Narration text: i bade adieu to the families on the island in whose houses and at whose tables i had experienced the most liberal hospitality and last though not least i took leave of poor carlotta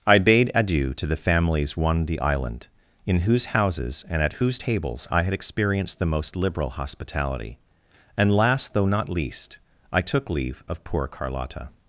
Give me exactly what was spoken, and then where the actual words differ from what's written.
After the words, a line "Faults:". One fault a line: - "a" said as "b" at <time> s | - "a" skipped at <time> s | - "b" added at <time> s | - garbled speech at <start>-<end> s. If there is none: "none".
i bade adieu to the families one the island in whose houses and at whose tables i had experienced the most liberal hospitality and last though not least i took leave of poor carlotta
Faults:
- "on" said as "one" at 1.8 s